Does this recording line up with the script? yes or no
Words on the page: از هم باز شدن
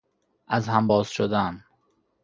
yes